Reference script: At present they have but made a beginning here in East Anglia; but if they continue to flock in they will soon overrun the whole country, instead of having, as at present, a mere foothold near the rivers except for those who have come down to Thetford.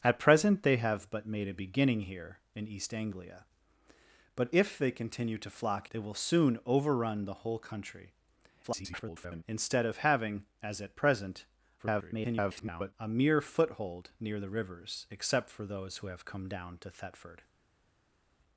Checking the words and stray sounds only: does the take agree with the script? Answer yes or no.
no